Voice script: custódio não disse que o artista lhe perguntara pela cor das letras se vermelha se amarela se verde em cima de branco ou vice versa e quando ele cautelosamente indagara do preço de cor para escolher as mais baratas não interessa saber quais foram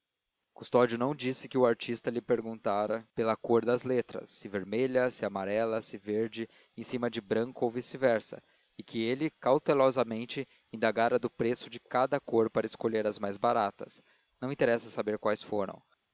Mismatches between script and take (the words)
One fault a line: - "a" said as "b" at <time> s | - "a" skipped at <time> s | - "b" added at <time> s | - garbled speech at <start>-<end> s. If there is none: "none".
- "quando" said as "que" at 8.8 s
- "cada" added at 11.8 s